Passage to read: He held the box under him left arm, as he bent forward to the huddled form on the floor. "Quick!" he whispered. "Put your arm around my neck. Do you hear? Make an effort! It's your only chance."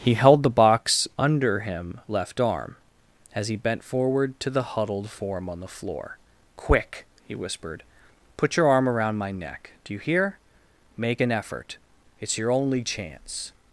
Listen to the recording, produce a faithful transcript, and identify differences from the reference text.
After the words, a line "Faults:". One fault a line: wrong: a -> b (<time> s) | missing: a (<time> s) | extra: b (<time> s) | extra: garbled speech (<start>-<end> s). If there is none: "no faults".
He held the box under him left arm, as he bent forward to the huddled form on the floor. "Quick!" he whispered. "Put your arm around my neck. Do you hear? Make an effort! It's your only chance."
Faults:
no faults